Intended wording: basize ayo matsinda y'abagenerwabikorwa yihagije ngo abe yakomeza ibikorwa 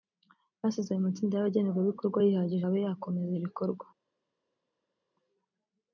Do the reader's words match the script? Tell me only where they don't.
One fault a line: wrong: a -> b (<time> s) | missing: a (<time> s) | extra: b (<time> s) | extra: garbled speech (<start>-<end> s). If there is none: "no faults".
missing: ngo (2.7 s)